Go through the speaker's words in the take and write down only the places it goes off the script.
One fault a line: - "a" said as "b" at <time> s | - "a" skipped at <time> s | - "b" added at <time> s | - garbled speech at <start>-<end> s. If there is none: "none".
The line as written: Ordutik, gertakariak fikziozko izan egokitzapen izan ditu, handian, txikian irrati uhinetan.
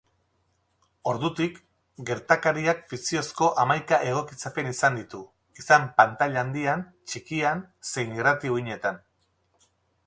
- "izan" said as "hamaika" at 3.6 s
- "izan pantaila" added at 5.6 s
- "zein" added at 7.9 s